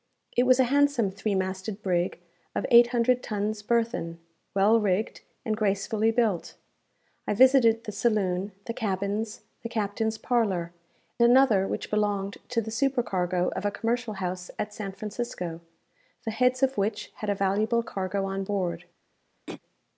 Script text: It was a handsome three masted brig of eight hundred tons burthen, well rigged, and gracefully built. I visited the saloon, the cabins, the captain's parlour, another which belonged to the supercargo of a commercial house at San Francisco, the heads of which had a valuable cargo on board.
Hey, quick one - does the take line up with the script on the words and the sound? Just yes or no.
no